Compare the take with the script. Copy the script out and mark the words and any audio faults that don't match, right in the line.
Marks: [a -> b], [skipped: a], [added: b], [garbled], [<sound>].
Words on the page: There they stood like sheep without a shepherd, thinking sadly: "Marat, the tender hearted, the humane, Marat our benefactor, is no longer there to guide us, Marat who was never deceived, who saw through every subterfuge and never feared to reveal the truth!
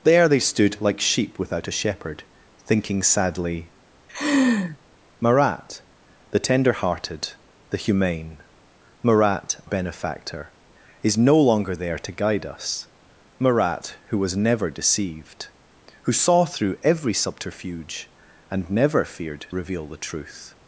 There they stood like sheep without a shepherd, thinking sadly: [laugh] "Marat, the tender hearted, the humane, Marat [skipped: our] benefactor, is no longer there to guide us, Marat who was never deceived, who saw through every subterfuge and never feared [skipped: to] reveal the truth!